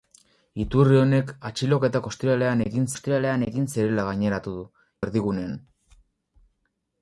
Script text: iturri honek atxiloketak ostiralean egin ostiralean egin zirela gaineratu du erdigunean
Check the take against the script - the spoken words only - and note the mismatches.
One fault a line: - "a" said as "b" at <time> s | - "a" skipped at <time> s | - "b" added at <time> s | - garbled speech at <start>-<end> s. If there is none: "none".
none